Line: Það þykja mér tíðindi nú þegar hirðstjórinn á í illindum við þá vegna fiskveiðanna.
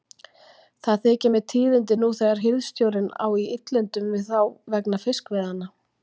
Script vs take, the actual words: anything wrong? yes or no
no